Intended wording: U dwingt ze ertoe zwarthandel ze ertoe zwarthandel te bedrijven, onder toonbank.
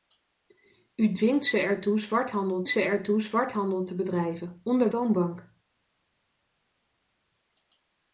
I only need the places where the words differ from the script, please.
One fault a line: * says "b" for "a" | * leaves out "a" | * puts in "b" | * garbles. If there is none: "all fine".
all fine